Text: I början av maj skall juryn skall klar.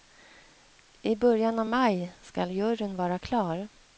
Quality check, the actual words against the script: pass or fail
fail